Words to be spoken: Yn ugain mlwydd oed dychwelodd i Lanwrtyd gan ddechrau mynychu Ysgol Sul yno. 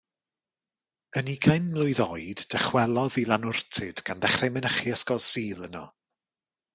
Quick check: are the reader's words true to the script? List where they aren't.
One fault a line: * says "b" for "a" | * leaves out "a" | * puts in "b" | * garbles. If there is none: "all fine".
all fine